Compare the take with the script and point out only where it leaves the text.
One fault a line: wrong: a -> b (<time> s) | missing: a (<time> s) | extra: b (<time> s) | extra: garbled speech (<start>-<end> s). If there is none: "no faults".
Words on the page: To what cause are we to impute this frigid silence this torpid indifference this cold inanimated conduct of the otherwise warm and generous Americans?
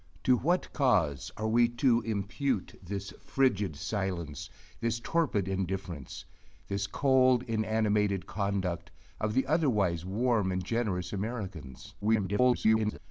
extra: garbled speech (12.0-13.0 s)